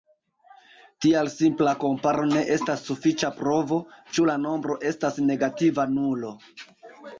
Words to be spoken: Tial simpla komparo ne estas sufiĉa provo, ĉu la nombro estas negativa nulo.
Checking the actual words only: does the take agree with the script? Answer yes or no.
yes